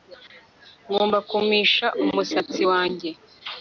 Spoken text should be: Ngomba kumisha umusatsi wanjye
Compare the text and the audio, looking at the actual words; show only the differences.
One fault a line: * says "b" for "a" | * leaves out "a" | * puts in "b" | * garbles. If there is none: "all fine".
all fine